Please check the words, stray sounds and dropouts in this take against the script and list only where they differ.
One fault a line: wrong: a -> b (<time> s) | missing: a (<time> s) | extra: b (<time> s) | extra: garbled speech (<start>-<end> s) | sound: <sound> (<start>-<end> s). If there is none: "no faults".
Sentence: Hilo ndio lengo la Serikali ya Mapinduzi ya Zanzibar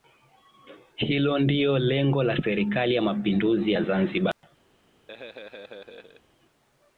sound: dropout (4.3-4.4 s)
sound: laugh (5.1-6.2 s)